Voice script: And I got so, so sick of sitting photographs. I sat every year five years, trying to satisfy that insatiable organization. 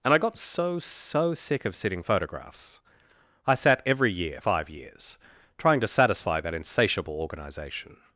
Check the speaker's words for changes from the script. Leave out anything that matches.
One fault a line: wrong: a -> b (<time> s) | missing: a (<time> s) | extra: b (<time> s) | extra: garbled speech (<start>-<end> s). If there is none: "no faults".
no faults